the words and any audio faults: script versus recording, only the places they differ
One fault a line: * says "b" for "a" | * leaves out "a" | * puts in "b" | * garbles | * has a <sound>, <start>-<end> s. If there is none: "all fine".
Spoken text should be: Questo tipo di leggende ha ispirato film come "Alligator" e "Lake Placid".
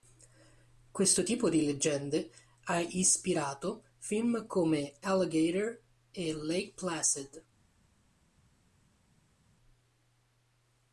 all fine